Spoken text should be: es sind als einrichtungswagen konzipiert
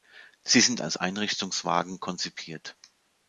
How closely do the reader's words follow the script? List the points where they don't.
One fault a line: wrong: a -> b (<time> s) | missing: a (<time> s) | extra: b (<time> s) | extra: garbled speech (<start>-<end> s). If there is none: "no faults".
wrong: es -> sie (0.4 s)